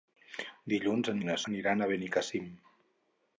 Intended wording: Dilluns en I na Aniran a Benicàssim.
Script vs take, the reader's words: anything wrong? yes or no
no